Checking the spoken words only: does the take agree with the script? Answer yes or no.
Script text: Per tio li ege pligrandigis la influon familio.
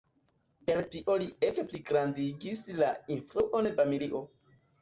yes